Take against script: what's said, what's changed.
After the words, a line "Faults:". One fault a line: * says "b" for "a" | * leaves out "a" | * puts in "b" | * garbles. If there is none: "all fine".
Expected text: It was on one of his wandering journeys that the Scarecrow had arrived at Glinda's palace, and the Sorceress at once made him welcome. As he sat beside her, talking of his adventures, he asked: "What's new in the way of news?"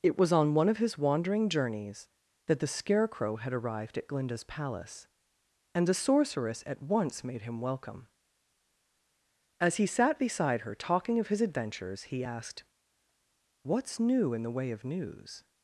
It was on one of his wandering journeys that the Scarecrow had arrived at Glinda's palace, and the Sorceress at once made him welcome. As he sat beside her, talking of his adventures, he asked: "What's new in the way of news?"
Faults:
all fine